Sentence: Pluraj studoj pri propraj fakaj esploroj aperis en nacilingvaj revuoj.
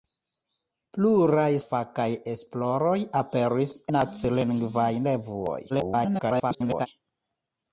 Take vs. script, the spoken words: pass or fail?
fail